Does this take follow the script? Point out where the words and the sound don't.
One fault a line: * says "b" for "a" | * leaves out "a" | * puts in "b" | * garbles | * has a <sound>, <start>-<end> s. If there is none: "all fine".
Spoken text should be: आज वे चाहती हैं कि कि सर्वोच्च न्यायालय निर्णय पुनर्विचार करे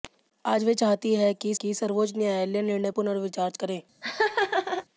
* has a laugh, 4.0-4.9 s